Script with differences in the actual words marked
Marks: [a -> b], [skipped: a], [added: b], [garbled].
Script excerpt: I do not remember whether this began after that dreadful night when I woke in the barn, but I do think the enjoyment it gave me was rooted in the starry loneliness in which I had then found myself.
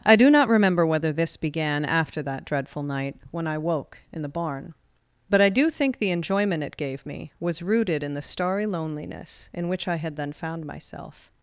I do not remember whether this began after that dreadful night when I woke in the barn, but I do think the enjoyment it gave me was rooted in the starry loneliness in which I had then found myself.